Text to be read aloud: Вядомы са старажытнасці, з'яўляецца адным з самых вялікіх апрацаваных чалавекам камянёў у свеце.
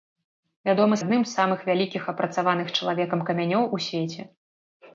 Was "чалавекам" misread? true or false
false